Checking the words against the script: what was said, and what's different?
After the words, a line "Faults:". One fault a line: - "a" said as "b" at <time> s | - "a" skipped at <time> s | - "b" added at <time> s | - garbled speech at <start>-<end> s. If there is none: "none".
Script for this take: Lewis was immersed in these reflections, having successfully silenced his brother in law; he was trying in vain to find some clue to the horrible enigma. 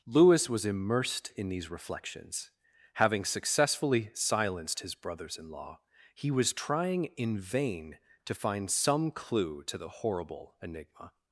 Lewis was immersed in these reflections, having successfully silenced his brothers in law; he was trying in vain to find some clue to the horrible enigma.
Faults:
- "brother" said as "brothers" at 4.9 s